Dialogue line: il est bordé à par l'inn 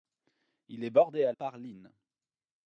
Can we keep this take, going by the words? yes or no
yes